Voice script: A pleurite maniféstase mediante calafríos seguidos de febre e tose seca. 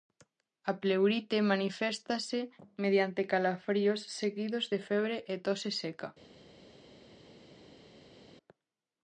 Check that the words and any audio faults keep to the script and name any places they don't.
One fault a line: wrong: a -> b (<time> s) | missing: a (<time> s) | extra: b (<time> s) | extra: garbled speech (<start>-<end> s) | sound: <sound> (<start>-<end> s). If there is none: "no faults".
no faults